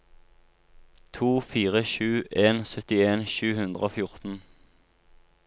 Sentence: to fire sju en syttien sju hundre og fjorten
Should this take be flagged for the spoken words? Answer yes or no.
no